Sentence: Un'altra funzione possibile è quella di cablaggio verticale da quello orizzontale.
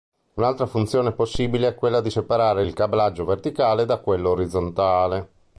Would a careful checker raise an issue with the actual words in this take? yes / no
yes